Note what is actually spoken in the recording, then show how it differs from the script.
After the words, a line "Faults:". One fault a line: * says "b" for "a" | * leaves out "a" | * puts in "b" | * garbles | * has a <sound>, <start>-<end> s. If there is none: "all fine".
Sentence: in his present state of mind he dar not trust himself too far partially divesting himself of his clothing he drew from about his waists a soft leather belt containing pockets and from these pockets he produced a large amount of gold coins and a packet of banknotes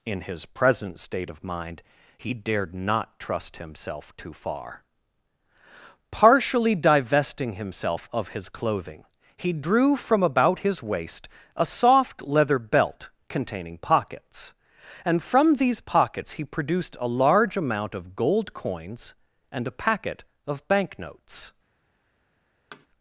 in his present state of mind he dared not trust himself too far partially divesting himself of his clothing he drew from about his waist a soft leather belt containing pockets and from these pockets he produced a large amount of gold coins and a packet of banknotes
Faults:
* says "dared" for "dar"
* says "waist" for "waists"
* has a thud, 22.7-22.9 s